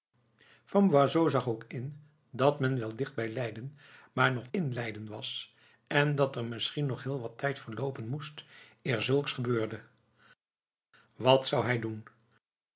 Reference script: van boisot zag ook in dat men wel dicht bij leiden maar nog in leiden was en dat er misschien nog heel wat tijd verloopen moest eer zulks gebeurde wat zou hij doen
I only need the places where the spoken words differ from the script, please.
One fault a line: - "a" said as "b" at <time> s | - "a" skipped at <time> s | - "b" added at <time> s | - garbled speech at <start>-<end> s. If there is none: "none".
none